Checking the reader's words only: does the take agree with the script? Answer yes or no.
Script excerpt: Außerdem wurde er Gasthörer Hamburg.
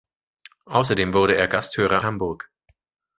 yes